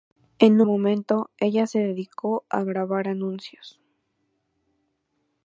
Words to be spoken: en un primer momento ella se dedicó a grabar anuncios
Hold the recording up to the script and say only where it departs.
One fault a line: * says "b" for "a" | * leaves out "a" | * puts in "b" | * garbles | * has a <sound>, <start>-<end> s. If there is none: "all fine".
* leaves out "un primer"